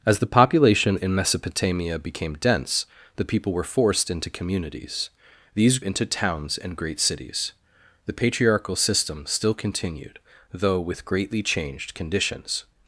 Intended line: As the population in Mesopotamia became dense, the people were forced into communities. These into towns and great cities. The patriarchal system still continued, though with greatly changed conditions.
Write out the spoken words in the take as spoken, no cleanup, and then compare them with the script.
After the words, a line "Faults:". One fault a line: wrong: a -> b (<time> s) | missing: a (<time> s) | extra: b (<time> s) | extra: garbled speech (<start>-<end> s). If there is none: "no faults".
As the population in Mesopotamia became dense, the people were forced into communities. These into towns and great cities. The patriarchal system still continued, though with greatly changed conditions.
Faults:
no faults